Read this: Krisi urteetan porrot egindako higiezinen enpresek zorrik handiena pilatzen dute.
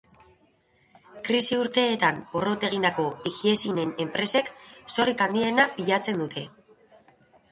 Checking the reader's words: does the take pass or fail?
pass